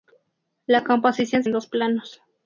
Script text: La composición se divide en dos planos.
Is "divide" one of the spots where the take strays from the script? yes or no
yes